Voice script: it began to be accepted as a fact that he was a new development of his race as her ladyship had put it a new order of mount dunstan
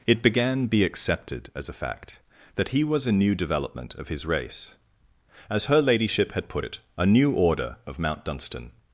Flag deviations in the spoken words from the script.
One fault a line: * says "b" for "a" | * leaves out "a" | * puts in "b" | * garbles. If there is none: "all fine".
* leaves out "to"